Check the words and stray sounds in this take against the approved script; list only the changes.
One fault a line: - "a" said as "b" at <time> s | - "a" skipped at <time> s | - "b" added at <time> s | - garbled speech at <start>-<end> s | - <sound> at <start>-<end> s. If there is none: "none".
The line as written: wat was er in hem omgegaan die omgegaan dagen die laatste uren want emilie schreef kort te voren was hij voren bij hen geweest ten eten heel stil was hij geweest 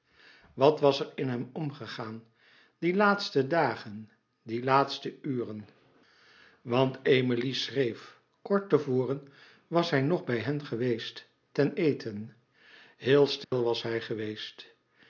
- "omgegaan" said as "laatste" at 3.0 s
- "voren" said as "nog" at 10.0 s
- dropout at 13.4-13.5 s